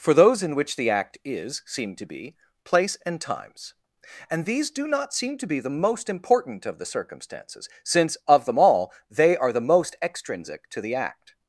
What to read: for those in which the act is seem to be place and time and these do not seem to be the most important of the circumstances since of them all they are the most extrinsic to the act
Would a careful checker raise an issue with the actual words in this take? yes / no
yes